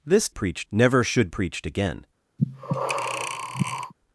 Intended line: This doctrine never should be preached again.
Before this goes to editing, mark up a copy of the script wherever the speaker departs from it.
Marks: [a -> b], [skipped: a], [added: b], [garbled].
This [doctrine -> preached] never should [skipped: be] preached again.